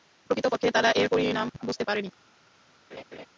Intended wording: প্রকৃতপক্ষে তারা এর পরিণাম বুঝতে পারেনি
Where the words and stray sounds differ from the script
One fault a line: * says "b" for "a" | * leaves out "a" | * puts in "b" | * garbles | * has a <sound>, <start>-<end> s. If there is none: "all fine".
* has a laugh, 2.9-3.3 s